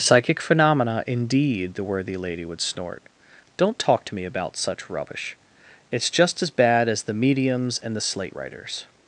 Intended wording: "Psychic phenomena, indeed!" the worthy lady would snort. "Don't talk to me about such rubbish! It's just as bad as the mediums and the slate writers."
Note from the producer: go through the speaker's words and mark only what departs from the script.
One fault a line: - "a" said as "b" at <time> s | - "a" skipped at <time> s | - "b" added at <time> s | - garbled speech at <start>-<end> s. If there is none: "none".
none